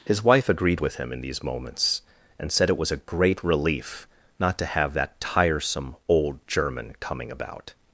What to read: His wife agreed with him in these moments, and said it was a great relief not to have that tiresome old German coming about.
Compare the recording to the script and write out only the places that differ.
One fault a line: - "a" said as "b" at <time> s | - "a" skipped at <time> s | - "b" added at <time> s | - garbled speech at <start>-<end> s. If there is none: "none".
none